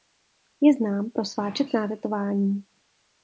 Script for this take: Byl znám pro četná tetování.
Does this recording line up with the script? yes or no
no